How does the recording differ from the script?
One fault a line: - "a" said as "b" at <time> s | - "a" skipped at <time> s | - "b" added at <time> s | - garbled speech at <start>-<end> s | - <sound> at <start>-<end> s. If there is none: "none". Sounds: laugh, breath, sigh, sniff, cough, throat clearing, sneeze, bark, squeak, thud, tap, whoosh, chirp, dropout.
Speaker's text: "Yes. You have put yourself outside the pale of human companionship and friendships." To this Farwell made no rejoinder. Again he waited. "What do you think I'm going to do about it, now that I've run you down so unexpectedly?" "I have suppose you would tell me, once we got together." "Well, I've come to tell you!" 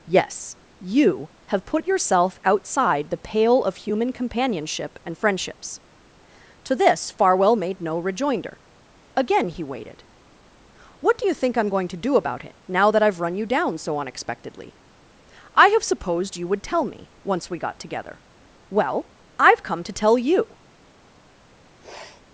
- "suppose" said as "supposed" at 15.8 s
- sniff at 21.8-22.2 s